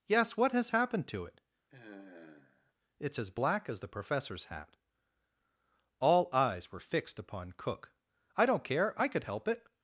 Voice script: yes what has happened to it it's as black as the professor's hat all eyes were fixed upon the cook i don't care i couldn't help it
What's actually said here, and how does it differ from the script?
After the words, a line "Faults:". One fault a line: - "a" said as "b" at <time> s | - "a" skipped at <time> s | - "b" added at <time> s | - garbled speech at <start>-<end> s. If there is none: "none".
yes what has happened to it it's as black as the professor's hat all eyes were fixed upon cook i don't care i could help it
Faults:
- "the" skipped at 7.5 s
- "couldn't" said as "could" at 9.1 s